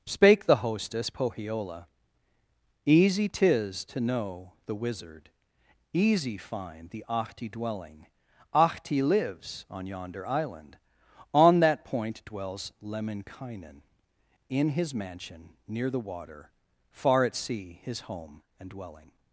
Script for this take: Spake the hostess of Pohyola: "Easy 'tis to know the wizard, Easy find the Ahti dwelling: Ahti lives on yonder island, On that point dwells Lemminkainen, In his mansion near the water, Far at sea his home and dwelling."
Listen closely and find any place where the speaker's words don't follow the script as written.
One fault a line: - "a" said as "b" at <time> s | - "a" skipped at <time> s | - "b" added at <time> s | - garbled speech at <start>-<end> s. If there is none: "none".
- "of" skipped at 1.1 s